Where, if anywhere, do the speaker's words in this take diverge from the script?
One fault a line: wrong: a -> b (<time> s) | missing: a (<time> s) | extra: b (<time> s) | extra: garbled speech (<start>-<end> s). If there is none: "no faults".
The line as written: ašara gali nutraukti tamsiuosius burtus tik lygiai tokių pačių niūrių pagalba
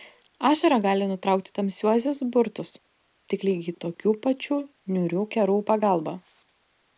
extra: kerų (5.4 s)